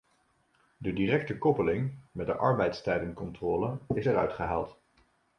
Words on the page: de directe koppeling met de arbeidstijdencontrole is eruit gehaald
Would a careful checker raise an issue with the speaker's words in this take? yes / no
no